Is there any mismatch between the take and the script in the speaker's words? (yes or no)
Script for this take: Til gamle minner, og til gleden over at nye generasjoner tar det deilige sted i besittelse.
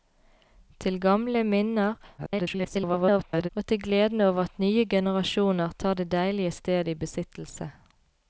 yes